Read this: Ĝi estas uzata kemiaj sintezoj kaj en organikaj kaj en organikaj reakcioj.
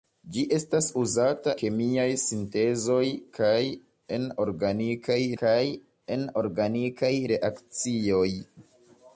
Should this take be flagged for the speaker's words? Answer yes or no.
no